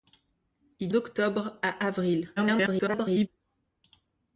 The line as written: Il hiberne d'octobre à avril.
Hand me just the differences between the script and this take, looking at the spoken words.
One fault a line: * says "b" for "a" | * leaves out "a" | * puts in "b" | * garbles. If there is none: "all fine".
* leaves out "hiberne"
* garbles